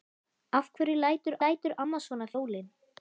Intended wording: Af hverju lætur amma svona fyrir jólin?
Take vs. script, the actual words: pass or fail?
fail